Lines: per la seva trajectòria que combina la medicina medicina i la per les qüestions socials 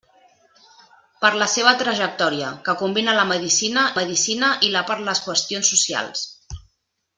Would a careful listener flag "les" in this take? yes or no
no